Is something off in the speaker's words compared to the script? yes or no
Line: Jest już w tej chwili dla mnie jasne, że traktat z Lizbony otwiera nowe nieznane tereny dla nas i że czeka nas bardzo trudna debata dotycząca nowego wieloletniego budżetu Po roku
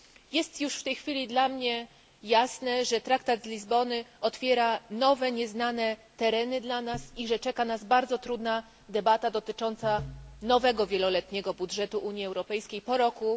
yes